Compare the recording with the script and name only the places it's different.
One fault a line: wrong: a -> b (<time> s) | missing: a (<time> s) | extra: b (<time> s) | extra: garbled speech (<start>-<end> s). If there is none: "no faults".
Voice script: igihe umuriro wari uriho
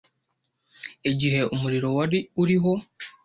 no faults